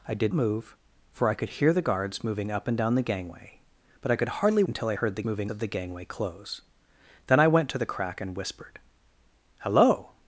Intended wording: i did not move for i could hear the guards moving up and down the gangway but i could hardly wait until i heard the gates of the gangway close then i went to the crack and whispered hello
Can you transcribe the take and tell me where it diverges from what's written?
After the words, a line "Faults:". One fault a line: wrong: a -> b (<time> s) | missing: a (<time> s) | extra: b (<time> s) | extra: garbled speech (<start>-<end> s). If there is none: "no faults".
i did move for i could hear the guards moving up and down the gangway but i could hardly until i heard the moving of the gangway close then i went to the crack and whispered hello
Faults:
missing: not (0.3 s)
missing: wait (4.6 s)
wrong: gates -> moving (5.2 s)